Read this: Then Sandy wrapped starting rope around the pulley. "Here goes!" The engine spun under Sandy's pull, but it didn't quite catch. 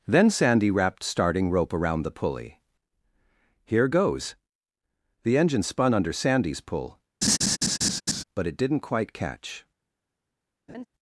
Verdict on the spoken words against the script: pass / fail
pass